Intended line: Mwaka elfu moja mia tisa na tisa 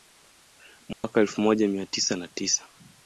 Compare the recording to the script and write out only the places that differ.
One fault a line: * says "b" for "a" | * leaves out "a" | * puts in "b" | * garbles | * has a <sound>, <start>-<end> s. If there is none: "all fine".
* has a dropout, 0.9-1.0 s